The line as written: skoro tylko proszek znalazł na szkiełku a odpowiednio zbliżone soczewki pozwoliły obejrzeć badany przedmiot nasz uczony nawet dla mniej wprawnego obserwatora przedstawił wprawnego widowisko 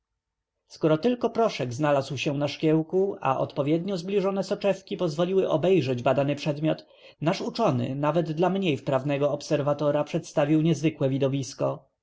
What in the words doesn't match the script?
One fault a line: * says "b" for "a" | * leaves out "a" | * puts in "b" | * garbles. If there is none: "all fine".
* puts in "się"
* says "niezwykłe" for "wprawnego"